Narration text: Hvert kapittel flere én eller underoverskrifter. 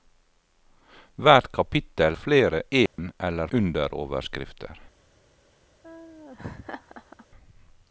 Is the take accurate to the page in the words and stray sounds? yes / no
no